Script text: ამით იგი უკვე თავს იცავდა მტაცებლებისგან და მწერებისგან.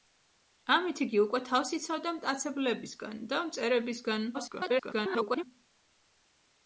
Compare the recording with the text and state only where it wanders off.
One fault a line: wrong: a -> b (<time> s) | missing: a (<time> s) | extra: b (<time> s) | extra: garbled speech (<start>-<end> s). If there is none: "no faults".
extra: garbled speech (4.3-5.4 s)